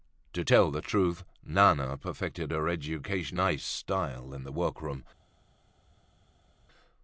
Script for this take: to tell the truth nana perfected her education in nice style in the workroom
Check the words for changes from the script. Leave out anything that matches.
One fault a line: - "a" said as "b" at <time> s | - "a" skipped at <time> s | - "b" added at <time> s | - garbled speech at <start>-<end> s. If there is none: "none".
- "in" skipped at 3.4 s